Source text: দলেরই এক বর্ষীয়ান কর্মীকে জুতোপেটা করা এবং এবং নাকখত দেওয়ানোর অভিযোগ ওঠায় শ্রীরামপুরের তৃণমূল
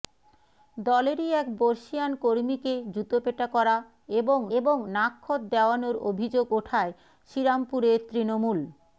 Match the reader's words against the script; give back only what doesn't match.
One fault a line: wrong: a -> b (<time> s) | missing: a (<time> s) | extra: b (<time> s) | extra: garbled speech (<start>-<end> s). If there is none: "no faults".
no faults